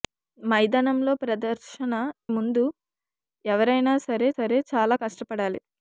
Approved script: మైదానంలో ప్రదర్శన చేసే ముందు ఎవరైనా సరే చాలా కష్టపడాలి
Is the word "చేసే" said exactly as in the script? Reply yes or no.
no